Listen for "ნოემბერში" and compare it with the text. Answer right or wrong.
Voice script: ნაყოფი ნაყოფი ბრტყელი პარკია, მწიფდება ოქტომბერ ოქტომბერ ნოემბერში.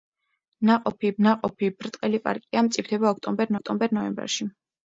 right